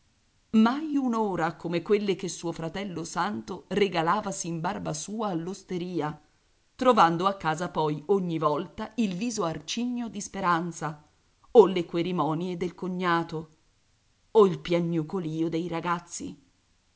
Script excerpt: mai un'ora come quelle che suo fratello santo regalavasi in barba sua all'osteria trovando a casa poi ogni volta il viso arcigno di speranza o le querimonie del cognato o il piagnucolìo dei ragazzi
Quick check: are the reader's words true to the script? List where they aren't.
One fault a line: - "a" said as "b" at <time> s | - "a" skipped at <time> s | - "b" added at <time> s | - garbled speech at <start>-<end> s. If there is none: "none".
none